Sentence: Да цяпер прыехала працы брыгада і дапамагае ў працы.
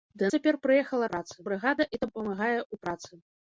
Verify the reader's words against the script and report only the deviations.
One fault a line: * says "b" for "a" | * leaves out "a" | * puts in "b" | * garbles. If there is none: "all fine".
all fine